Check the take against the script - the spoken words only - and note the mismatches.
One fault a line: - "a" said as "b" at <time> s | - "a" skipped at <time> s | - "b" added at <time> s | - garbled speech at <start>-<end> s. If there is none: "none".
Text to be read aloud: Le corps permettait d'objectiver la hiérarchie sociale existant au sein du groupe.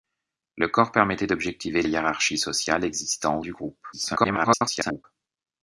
- "la" skipped at 1.8 s
- "sein" skipped at 3.4 s
- garbled speech at 3.9-5.0 s